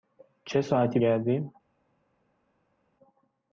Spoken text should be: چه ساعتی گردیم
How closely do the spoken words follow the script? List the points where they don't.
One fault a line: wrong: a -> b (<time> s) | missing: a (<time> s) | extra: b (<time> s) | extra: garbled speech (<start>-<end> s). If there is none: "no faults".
no faults